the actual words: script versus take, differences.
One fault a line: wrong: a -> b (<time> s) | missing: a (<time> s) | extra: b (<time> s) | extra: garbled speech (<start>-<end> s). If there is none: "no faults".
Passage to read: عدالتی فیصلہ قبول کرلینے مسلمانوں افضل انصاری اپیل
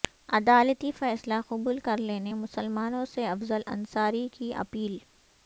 extra: سے (3.1 s)
extra: کی (4.3 s)